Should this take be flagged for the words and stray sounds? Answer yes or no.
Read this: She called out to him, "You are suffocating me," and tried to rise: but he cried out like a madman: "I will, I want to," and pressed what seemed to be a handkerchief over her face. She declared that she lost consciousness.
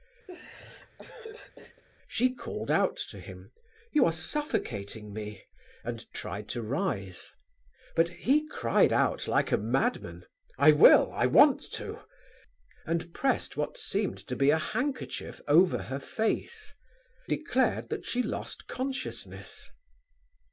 yes